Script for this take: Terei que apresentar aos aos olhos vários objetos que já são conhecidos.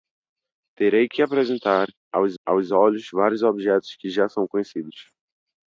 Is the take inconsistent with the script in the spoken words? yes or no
no